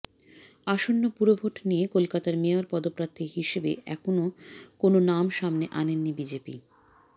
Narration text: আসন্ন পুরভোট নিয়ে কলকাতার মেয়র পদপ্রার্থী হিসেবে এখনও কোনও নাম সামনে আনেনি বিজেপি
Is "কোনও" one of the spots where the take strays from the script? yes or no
no